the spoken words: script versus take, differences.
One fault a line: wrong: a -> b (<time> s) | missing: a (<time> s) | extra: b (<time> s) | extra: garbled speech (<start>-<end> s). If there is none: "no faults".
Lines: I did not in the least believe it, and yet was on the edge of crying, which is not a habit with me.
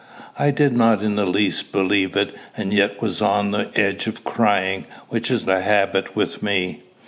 missing: not (5.5 s)